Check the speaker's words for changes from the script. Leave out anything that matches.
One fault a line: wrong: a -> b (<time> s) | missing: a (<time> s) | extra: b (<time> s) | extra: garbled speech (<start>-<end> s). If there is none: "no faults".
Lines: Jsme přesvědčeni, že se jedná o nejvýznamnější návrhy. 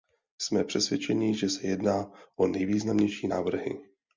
no faults